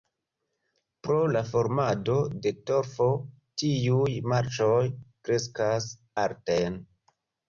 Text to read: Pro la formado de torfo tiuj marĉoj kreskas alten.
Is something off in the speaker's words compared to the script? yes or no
no